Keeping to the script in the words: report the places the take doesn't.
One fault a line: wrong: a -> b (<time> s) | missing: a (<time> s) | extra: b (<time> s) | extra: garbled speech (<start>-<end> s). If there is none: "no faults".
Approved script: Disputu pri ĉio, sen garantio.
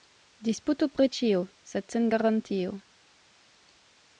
extra: sed (1.7 s)